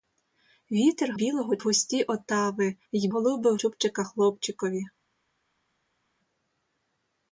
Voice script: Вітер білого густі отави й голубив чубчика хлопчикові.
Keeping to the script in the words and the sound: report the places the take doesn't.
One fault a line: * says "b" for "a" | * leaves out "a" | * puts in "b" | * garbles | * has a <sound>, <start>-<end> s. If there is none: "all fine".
all fine